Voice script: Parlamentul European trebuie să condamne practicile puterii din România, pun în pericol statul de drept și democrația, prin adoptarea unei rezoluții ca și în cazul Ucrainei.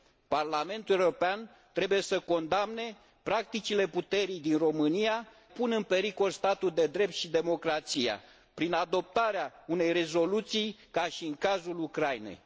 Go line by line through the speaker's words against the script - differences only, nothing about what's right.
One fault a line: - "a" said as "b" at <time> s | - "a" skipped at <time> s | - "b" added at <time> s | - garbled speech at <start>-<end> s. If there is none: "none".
none